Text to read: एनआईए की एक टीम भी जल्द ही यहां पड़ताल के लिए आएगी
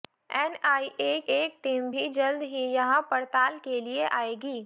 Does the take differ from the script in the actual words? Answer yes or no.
yes